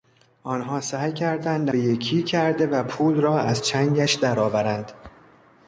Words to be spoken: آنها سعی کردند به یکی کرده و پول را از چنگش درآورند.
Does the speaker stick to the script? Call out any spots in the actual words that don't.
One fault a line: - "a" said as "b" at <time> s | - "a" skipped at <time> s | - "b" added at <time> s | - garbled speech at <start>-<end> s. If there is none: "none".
none